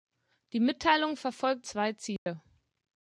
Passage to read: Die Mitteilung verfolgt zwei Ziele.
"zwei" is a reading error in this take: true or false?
false